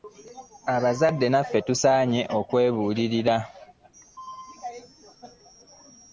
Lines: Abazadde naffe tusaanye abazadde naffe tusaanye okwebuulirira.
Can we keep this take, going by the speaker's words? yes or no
no